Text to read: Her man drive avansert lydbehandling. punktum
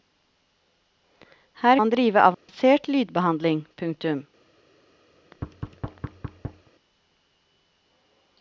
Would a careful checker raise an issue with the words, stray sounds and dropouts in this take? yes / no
yes